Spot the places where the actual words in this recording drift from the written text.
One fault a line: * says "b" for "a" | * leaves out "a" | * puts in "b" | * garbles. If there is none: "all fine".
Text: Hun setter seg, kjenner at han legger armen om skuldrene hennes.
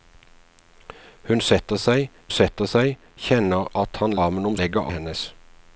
* puts in "setter seg"
* leaves out "legger"
* says "legger" for "skuldrene"